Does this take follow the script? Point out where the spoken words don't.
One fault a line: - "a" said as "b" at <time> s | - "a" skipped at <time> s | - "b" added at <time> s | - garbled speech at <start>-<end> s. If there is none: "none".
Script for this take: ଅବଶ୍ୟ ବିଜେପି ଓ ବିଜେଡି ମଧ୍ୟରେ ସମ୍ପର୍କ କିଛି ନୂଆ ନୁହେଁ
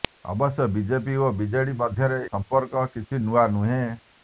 none